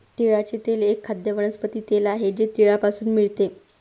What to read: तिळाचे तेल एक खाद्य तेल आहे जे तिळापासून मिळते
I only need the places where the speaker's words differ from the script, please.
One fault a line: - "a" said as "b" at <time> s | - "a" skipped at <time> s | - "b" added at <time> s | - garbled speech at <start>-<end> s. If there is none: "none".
- "वनस्पती" added at 1.3 s